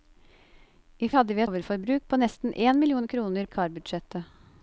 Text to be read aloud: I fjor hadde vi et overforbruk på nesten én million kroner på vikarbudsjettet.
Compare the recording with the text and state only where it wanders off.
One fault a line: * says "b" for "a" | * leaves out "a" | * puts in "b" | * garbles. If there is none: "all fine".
* leaves out "fjor"
* leaves out "et"
* leaves out "på"